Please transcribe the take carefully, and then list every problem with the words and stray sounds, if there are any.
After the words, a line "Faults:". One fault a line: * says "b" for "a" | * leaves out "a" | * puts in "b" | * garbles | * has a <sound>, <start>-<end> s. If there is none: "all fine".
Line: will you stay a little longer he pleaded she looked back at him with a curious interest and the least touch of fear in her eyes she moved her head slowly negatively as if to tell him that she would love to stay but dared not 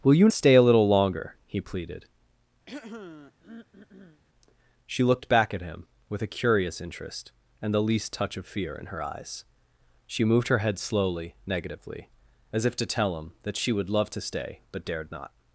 will you stay a little longer he pleaded she looked back at him with a curious interest and the least touch of fear in her eyes she moved her head slowly negatively as if to tell him that she would love to stay but dared not
Faults:
* has a throat clearing, 2.7-4.2 s